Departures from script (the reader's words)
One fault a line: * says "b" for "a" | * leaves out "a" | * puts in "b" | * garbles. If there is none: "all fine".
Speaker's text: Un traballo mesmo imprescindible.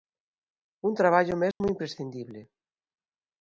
all fine